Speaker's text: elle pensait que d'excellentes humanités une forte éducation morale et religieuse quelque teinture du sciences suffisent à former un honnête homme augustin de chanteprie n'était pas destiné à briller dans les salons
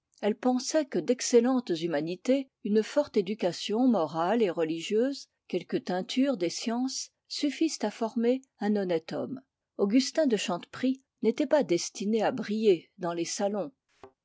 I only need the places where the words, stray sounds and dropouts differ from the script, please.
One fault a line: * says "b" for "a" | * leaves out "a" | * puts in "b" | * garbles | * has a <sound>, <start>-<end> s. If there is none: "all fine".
* says "des" for "du"
* has a thud, 13.9-14.2 s